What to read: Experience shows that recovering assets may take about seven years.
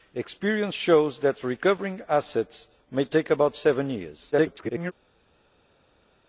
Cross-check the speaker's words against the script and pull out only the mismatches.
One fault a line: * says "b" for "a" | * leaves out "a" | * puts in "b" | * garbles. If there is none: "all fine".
* garbles